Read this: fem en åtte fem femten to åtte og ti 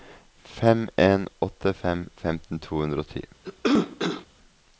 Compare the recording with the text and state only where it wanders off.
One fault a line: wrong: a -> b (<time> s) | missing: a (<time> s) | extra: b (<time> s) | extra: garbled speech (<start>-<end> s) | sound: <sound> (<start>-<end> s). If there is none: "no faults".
wrong: åtte -> hundre (2.8 s)
sound: cough (3.4-4.3 s)